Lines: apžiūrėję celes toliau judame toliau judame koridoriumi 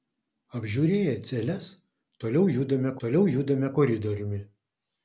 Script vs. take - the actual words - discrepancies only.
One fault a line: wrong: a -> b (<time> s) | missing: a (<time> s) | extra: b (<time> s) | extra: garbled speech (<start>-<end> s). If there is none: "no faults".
no faults